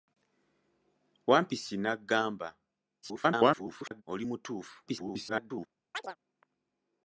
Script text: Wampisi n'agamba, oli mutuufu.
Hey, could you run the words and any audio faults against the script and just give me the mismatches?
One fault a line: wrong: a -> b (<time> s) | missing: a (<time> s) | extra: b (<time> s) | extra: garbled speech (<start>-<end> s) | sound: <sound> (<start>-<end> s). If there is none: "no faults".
extra: garbled speech (3.0-4.0 s)
extra: garbled speech (4.9-5.7 s)
sound: chirp (5.9-6.2 s)